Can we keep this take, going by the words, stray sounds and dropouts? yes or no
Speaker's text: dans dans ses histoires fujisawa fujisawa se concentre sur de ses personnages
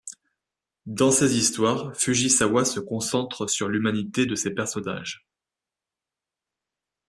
no